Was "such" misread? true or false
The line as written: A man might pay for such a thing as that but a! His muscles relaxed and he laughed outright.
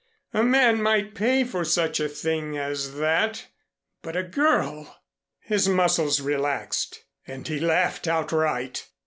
false